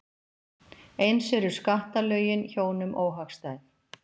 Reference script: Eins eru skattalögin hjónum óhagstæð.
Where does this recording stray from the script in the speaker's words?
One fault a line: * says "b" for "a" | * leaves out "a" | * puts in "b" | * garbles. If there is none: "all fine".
all fine